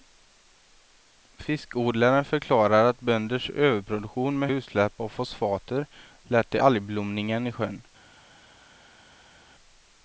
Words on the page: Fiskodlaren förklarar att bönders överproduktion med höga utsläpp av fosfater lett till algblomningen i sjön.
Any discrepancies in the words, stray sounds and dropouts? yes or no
yes